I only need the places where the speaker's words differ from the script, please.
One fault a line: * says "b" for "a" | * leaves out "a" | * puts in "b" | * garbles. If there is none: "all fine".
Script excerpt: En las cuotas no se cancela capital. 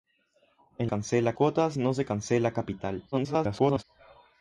* says "cancela" for "las"
* garbles